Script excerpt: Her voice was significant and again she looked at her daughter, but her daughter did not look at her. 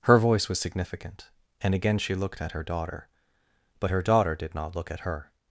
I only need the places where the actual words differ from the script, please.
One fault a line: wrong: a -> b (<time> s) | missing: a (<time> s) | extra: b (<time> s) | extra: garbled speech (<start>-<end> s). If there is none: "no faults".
no faults